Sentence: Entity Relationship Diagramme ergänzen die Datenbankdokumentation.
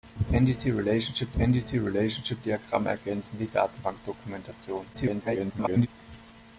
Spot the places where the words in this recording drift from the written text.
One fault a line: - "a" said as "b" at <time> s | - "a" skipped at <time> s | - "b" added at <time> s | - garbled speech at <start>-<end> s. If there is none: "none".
- "entity Relationship" added at 1.4 s
- garbled speech at 4.9-5.9 s